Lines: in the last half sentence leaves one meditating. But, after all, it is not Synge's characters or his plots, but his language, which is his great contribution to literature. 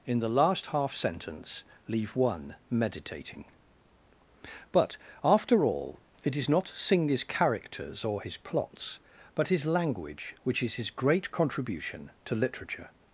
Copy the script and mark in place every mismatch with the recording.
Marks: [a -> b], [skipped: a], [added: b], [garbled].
in the last half sentence [leaves -> leave] one meditating. But, after all, it is not Synge's characters or his plots, but his language, which is his great contribution to literature.